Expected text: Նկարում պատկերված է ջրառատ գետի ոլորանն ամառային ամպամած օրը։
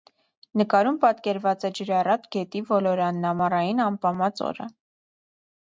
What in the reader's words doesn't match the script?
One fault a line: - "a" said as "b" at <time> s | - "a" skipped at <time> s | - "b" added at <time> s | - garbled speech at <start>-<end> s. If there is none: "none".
none